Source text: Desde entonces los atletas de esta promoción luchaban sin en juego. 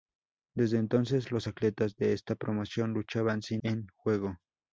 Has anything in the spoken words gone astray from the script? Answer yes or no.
no